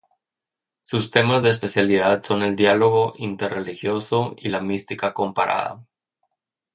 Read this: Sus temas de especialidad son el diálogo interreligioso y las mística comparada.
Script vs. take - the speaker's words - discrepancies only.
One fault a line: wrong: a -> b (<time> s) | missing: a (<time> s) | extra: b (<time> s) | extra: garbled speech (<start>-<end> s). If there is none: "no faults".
wrong: las -> la (4.5 s)